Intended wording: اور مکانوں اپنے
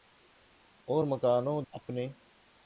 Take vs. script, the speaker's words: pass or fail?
pass